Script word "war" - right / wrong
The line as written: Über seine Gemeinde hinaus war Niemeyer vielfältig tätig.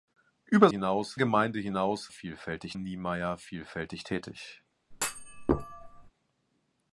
wrong